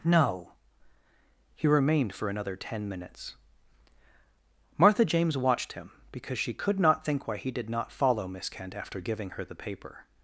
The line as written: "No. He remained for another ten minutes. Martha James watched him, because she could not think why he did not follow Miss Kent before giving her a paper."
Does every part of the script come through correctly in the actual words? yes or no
no